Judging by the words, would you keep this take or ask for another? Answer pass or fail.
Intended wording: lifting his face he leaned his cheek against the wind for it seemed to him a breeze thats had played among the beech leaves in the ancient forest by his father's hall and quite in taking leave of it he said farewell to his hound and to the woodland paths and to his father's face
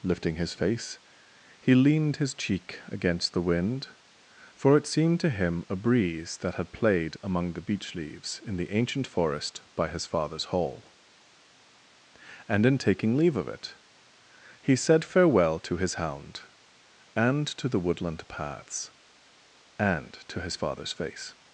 fail